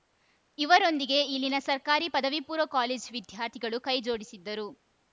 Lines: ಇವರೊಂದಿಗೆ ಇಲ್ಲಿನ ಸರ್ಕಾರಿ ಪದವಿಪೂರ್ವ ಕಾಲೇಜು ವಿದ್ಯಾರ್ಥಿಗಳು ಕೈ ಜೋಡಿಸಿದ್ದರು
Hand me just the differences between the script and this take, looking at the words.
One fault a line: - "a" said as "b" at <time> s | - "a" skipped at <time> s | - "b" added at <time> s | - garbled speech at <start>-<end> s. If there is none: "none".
none